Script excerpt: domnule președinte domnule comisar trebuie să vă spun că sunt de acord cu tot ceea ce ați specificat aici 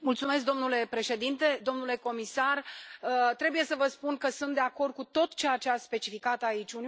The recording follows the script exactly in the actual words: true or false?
true